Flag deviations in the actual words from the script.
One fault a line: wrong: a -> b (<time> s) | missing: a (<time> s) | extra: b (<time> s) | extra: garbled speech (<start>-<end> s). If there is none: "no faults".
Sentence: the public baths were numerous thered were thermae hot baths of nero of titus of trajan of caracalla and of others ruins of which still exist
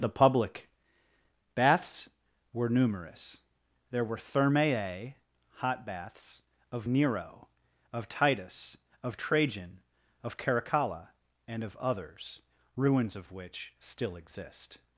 wrong: thered -> there (3.9 s)